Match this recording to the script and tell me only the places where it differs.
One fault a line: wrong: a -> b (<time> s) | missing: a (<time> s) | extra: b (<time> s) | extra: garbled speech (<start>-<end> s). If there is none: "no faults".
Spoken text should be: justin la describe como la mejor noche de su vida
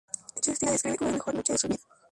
no faults